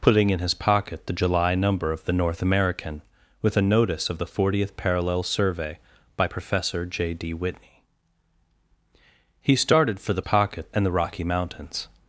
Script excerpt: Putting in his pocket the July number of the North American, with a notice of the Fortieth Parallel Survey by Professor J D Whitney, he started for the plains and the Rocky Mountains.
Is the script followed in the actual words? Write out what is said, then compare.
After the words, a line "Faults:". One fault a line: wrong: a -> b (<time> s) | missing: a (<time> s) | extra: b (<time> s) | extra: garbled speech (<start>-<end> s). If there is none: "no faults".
Putting in his pocket the July number of the North American, with a notice of the Fortieth Parallel Survey by Professor J D Whitney, he started for the pocket and the Rocky Mountains.
Faults:
wrong: plains -> pocket (10.2 s)